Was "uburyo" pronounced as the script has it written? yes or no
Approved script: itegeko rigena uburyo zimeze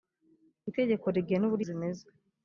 yes